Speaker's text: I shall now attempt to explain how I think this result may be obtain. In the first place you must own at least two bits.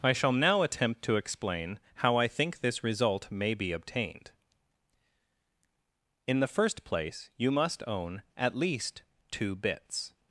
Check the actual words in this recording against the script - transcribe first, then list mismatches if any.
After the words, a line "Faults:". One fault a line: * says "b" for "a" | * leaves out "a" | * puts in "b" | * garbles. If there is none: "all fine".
I shall now attempt to explain how I think this result may be obtained. In the first place you must own at least two bits.
Faults:
* says "obtained" for "obtain"